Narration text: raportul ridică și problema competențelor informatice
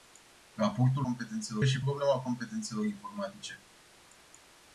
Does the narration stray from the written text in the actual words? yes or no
yes